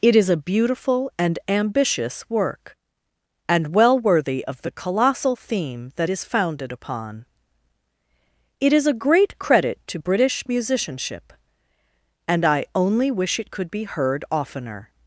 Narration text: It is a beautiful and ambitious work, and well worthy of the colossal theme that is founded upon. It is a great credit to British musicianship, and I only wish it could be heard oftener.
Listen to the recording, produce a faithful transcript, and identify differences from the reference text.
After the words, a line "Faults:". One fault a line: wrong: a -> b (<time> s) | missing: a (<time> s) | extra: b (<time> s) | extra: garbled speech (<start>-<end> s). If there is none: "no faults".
It is a beautiful and ambitious work, and well worthy of the colossal theme that is founded upon. It is a great credit to British musicianship, and I only wish it could be heard oftener.
Faults:
no faults